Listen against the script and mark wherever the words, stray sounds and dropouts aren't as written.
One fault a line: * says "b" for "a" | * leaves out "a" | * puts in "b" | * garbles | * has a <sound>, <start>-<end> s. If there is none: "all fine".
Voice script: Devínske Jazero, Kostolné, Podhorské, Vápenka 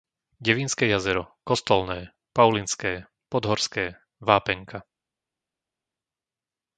* puts in "Paulinské"